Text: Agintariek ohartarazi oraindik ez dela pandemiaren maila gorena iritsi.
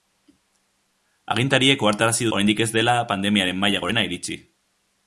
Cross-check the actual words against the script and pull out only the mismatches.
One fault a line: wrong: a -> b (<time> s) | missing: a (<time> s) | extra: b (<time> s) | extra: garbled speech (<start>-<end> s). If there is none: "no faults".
no faults